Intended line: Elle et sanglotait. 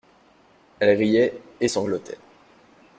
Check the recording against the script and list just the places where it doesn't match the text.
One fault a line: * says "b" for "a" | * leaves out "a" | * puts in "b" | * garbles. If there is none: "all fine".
* puts in "riait"